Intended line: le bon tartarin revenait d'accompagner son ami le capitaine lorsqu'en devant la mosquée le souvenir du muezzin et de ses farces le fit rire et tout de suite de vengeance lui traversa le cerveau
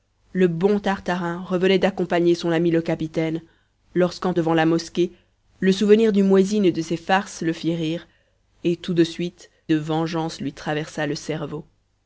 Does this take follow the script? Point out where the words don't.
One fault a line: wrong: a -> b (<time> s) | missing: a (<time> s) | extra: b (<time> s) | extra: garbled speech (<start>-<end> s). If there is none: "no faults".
no faults